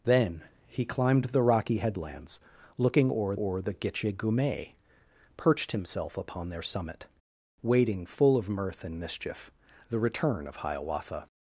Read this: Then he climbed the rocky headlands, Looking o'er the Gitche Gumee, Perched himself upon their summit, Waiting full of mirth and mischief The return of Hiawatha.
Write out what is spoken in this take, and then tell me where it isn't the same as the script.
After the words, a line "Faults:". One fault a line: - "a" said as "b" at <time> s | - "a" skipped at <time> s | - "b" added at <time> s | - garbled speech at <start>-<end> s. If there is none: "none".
Then he climbed the rocky headlands, Looking o'er o'er the Gitche Gumee, Perched himself upon their summit, Waiting full of mirth and mischief The return of Hiawatha.
Faults:
- "o'er" added at 3.3 s